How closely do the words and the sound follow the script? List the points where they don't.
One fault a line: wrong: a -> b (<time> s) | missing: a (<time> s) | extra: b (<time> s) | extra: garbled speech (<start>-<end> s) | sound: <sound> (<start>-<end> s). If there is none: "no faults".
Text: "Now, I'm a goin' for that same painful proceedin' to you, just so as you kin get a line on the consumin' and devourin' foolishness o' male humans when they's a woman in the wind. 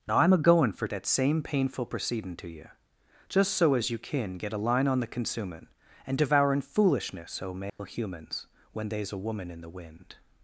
sound: dropout (7.7-7.8 s)